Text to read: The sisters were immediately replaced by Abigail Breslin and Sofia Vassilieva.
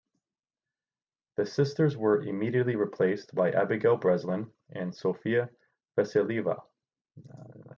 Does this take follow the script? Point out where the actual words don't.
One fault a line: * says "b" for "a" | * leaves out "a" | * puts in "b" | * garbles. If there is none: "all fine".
all fine